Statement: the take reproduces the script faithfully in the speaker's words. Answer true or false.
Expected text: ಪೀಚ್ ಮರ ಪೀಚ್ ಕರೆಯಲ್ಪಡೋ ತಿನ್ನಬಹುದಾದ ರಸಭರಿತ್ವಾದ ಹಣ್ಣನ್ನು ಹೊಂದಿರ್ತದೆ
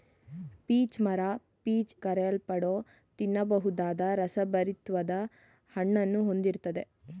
true